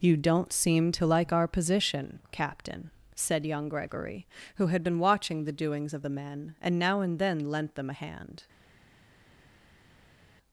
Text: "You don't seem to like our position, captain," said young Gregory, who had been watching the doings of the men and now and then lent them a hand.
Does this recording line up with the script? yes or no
yes